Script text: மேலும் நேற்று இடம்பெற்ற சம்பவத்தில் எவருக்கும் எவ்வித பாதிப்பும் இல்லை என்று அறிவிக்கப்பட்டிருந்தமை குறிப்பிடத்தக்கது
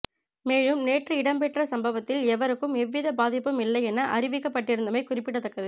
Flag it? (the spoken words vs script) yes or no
yes